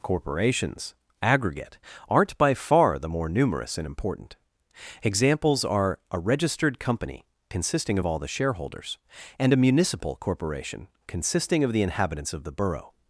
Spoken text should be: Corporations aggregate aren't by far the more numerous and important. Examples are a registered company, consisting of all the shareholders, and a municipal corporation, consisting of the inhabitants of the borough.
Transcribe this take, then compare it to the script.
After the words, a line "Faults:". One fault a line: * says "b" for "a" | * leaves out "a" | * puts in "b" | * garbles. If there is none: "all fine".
Corporations aggregate aren't by far the more numerous and important. Examples are a registered company, consisting of all the shareholders, and a municipal corporation, consisting of the inhabitants of the borough.
Faults:
all fine